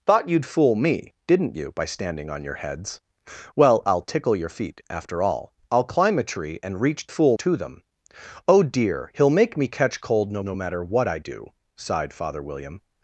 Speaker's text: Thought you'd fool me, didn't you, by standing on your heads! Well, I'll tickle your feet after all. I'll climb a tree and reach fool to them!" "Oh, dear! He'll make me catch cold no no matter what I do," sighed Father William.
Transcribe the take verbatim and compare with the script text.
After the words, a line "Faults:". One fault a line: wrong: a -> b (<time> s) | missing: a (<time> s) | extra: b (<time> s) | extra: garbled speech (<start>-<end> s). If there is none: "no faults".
Thought you'd fool me, didn't you, by standing on your heads! Well, I'll tickle your feet after all. I'll climb a tree and reach fool to them!" "Oh, dear! He'll make me catch cold no no matter what I do," sighed Father William.
Faults:
no faults